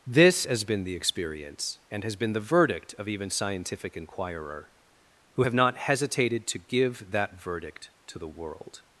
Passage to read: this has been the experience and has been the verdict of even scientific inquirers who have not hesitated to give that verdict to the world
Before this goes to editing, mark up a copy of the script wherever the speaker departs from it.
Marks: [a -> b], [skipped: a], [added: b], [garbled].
this has been the experience and has been the verdict of even scientific [inquirers -> inquirer] who have not hesitated to give that verdict to the world